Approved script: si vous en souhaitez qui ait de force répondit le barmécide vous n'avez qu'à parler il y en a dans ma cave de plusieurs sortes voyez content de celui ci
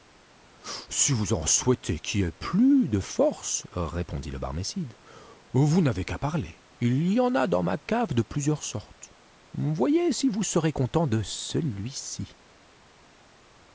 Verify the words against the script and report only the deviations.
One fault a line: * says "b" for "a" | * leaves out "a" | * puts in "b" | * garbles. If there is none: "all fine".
* puts in "plus"
* puts in "si vous serez"